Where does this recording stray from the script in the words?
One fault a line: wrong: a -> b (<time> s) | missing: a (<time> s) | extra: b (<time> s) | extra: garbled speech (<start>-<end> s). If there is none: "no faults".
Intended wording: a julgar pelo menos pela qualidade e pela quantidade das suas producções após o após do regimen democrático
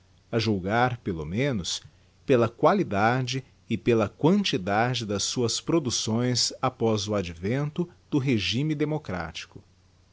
wrong: após -> advento (7.1 s)